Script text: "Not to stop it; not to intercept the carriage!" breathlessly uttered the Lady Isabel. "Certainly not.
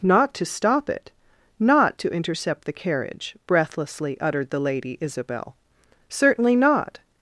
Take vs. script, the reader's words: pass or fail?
pass